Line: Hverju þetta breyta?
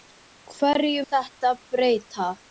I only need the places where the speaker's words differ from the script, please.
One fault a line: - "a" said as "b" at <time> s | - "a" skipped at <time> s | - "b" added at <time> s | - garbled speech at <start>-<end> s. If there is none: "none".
none